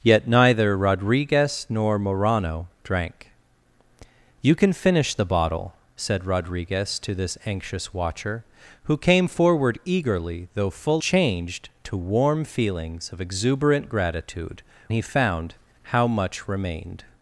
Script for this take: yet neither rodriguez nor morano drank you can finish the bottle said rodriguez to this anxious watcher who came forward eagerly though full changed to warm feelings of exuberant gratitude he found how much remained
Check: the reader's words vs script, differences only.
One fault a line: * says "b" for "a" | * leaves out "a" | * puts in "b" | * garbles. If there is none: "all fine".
all fine